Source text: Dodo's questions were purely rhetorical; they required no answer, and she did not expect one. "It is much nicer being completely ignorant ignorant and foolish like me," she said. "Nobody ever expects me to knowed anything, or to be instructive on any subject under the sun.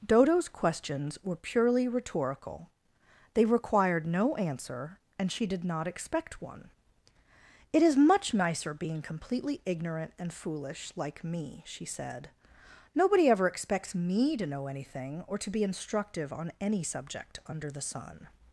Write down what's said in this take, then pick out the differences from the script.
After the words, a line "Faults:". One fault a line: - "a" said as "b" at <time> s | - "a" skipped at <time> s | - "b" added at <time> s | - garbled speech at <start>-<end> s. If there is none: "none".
Dodo's questions were purely rhetorical; they required no answer, and she did not expect one. "It is much nicer being completely ignorant and foolish like me," she said. "Nobody ever expects me to know anything, or to be instructive on any subject under the sun.
Faults:
- "ignorant" skipped at 10.1 s
- "knowed" said as "know" at 14.5 s